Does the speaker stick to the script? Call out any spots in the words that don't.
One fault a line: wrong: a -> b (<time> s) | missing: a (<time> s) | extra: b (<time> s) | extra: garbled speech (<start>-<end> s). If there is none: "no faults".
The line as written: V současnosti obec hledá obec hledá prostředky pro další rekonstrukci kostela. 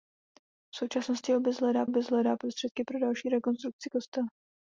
no faults